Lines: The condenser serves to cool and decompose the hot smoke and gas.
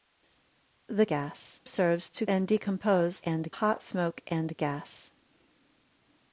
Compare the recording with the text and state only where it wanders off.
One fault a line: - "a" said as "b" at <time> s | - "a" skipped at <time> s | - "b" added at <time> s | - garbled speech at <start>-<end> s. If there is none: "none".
- "condenser" said as "gas" at 1.0 s
- "cool" skipped at 2.2 s
- "the" said as "and" at 3.2 s